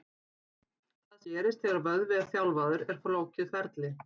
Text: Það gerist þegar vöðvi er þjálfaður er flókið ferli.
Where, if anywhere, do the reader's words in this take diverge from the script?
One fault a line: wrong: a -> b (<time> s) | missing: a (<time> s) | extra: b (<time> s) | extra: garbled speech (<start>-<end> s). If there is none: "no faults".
no faults